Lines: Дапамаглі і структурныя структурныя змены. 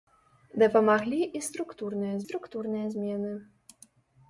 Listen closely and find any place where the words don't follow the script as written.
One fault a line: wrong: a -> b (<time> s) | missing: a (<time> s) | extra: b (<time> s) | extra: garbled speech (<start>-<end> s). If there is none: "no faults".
no faults